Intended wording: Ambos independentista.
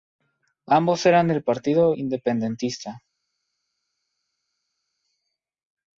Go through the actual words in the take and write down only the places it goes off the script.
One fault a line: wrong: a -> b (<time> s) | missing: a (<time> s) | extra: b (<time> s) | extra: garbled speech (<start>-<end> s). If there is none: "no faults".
extra: eran del partido (1.1 s)